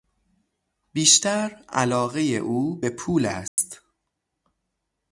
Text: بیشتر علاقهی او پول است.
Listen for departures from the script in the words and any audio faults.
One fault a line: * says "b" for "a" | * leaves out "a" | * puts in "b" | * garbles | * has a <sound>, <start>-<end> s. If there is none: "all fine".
* puts in "به"
* has a dropout, 3.5-3.6 s